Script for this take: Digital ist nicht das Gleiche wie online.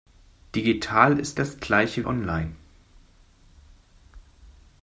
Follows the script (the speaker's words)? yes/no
no